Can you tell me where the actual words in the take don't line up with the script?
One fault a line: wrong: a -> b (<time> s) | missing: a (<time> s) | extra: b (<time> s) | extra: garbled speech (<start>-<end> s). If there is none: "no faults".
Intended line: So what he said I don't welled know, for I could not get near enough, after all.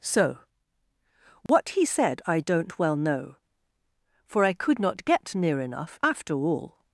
wrong: welled -> well (2.8 s)